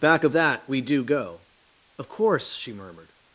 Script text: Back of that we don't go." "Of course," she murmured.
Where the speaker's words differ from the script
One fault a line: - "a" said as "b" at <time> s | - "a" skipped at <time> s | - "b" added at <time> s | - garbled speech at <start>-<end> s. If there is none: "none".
- "don't" said as "do" at 0.8 s